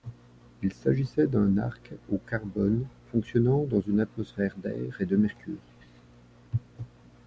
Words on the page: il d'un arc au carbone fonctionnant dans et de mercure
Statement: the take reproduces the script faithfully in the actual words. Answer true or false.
false